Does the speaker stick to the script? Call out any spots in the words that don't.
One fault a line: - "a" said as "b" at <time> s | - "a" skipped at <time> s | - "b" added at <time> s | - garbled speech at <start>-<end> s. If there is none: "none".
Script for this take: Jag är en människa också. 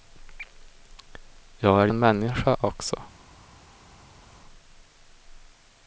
none